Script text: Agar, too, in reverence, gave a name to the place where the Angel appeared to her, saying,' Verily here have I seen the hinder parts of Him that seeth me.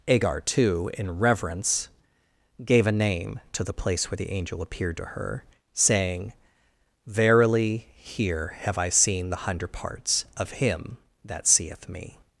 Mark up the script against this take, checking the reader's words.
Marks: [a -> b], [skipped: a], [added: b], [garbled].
Agar, too, in reverence, gave a name to the place where the Angel appeared to her, saying,' Verily here have I seen the [hinder -> hundred] parts of Him that seeth me.